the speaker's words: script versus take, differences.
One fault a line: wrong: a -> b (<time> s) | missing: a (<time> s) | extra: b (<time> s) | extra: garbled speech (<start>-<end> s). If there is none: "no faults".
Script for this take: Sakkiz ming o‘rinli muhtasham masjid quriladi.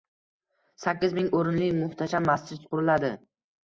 no faults